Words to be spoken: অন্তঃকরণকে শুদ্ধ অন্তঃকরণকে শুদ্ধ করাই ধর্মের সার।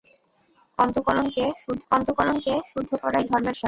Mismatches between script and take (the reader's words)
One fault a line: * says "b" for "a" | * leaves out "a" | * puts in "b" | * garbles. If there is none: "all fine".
all fine